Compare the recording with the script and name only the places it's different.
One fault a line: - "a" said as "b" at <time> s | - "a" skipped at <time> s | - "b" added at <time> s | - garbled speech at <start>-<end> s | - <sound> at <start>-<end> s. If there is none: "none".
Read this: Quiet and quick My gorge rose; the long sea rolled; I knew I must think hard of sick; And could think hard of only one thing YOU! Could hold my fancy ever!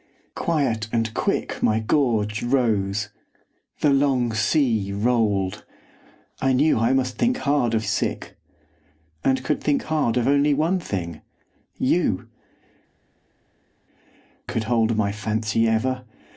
none